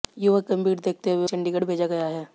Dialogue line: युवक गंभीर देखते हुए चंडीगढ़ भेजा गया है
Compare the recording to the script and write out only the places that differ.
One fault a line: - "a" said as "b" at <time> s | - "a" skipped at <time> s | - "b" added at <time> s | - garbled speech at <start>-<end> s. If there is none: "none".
none